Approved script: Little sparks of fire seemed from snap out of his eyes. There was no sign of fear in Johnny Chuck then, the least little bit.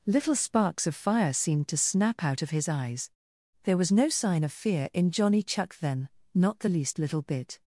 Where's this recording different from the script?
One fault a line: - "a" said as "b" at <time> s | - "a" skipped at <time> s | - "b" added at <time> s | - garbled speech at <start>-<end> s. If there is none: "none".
- "from" said as "to" at 1.7 s
- "not" added at 6.3 s